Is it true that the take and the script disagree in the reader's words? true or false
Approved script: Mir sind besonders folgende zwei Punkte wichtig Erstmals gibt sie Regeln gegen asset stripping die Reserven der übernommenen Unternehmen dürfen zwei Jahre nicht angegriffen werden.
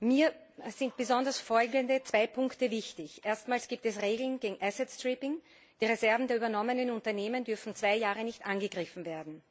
true